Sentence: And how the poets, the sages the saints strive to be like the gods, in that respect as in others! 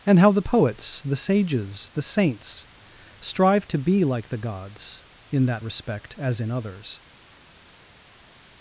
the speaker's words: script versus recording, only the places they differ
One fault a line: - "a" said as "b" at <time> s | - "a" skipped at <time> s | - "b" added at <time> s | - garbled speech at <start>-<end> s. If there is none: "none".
none